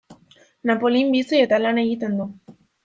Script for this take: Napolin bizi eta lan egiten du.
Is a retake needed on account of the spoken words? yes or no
no